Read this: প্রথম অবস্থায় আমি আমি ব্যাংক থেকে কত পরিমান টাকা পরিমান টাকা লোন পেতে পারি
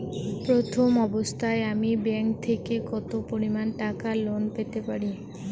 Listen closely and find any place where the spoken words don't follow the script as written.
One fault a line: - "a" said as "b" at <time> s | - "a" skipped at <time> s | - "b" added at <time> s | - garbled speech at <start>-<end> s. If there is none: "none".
- "আমি" skipped at 1.9 s
- "পরিমান টাকা" skipped at 4.1 s